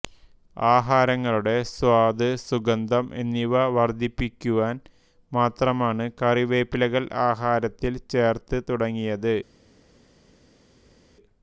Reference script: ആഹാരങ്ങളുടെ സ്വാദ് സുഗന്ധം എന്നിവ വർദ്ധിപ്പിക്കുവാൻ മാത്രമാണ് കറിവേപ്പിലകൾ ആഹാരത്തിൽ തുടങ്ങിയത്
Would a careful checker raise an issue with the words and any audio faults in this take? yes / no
yes